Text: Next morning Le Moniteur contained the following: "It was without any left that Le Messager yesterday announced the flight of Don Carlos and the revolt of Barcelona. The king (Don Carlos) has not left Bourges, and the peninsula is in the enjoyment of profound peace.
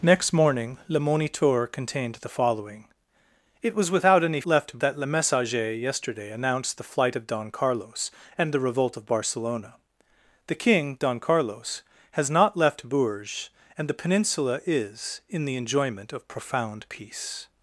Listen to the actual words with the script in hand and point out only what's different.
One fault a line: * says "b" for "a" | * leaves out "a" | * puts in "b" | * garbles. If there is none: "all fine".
all fine